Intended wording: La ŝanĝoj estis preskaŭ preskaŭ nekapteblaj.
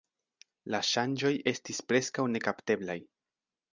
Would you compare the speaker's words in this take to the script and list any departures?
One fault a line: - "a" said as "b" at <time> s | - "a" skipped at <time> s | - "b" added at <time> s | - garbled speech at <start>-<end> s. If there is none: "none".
- "preskaŭ" skipped at 2.3 s